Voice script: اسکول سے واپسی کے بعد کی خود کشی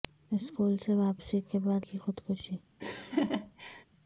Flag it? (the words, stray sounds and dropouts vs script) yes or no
yes